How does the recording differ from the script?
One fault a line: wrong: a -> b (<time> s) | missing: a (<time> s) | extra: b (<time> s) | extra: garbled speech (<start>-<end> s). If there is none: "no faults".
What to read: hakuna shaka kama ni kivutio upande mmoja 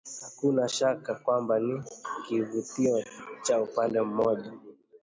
wrong: kama -> kwamba (1.1 s)
extra: cha (3.4 s)